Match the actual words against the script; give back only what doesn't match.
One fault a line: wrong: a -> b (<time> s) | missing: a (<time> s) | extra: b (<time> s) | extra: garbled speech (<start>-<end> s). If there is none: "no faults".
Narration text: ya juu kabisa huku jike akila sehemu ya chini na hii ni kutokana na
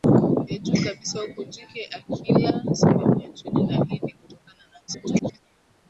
extra: garbled speech (4.9-5.4 s)